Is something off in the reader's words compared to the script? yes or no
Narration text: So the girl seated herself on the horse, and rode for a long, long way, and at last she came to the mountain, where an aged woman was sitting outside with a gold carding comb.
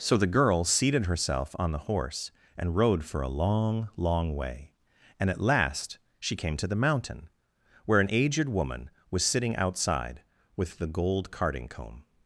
yes